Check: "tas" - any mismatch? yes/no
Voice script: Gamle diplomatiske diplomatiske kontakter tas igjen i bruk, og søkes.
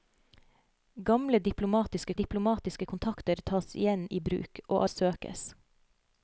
no